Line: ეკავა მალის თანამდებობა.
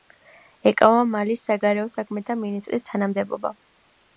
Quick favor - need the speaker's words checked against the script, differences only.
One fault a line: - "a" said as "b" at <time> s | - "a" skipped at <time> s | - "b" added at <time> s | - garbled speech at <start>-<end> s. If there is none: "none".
- "საგარეო საქმეთა მინისტრის" added at 1.5 s